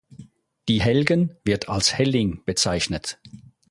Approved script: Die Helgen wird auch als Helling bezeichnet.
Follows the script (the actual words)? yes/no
no